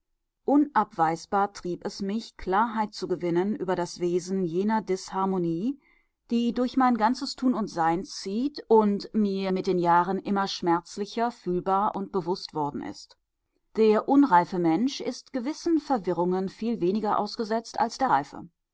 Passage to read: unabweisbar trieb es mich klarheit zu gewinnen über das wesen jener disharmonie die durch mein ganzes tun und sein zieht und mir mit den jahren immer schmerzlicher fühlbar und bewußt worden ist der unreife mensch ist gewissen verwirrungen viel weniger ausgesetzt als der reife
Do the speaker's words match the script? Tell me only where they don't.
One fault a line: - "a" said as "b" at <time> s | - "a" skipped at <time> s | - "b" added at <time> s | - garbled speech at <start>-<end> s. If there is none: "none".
none